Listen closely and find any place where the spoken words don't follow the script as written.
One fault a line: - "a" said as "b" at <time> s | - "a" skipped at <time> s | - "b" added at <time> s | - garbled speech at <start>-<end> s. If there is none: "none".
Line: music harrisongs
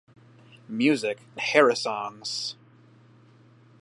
none